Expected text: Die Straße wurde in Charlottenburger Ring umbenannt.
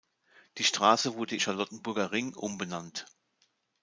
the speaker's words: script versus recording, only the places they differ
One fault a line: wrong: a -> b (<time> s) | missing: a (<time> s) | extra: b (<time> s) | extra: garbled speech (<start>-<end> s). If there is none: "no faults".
missing: in (1.4 s)